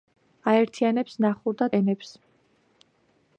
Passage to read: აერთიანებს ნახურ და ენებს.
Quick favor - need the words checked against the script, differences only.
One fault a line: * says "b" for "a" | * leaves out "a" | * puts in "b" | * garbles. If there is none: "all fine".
all fine